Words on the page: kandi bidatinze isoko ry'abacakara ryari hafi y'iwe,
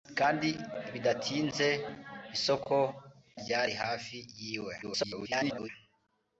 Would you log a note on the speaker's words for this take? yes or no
yes